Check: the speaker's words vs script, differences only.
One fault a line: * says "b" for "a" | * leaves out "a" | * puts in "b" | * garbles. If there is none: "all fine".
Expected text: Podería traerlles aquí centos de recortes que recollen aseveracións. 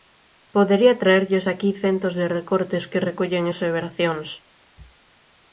all fine